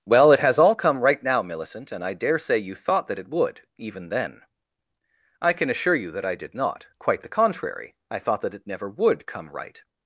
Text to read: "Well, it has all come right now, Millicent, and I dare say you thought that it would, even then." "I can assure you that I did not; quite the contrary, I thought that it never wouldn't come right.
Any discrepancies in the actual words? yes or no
yes